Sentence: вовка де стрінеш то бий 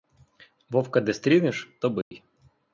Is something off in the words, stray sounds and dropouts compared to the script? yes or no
yes